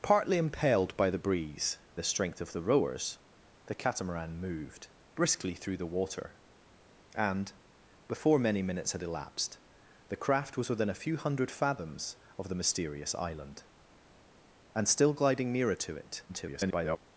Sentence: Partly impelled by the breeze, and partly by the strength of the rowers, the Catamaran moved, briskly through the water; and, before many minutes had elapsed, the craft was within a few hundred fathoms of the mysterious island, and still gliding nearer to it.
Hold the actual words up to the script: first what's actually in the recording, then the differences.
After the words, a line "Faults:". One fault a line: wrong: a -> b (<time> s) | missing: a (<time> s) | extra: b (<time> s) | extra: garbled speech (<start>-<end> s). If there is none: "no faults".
Partly impelled by the breeze, the strength of the rowers, the Catamaran moved, briskly through the water; and, before many minutes had elapsed, the craft was within a few hundred fathoms of the mysterious island, and still gliding nearer to it. [garbled]
Faults:
missing: and partly by (1.8 s)
extra: garbled speech (16.3-17.0 s)